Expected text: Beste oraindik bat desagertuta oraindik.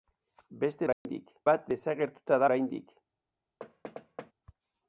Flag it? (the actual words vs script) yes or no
no